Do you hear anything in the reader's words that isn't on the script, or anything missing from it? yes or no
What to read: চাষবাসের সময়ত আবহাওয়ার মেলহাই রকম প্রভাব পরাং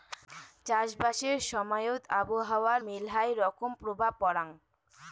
no